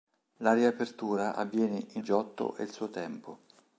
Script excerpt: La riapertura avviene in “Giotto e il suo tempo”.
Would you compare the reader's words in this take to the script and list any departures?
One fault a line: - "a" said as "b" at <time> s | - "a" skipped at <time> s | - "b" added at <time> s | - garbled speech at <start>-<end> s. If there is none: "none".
none